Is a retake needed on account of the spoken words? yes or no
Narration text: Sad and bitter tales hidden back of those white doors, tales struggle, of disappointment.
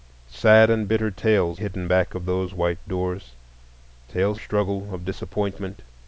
no